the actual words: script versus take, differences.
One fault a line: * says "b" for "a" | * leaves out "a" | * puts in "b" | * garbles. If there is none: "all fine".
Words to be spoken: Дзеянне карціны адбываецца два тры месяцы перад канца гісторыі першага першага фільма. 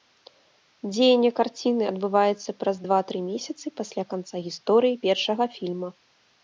* puts in "праз"
* says "пасля" for "перад"
* leaves out "першага"